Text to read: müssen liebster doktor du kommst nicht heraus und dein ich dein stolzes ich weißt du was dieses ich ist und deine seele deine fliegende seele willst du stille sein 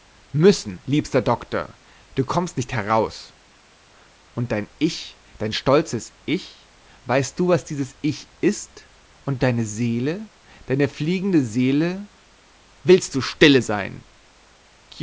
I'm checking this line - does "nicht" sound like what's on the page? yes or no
yes